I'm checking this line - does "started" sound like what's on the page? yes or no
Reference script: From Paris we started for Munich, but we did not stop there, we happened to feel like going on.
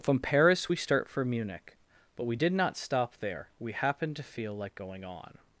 no